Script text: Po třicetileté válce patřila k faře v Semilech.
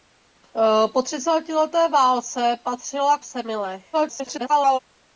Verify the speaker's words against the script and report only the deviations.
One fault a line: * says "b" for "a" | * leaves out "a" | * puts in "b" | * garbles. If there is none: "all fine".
* leaves out "faře"
* garbles